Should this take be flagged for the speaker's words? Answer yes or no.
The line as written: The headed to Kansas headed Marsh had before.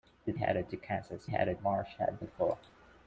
no